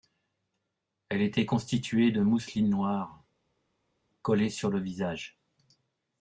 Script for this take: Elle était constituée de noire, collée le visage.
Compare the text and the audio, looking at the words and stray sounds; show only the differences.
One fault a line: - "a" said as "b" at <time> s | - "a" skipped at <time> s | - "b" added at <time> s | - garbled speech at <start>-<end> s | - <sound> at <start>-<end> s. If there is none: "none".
- "mousseline" added at 2.2 s
- "sur" added at 4.5 s